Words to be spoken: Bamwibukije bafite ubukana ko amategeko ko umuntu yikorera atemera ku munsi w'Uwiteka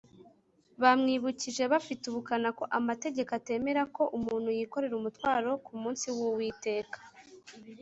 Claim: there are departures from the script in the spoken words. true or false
true